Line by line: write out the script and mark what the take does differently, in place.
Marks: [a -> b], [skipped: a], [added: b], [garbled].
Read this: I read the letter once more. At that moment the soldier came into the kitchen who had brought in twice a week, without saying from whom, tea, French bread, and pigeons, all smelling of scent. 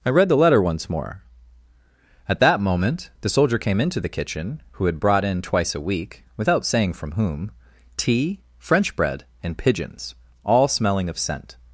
I read the letter once more. At that moment the soldier came into the kitchen who had brought in twice a week, without saying from whom, tea, French bread, and pigeons, all smelling of scent.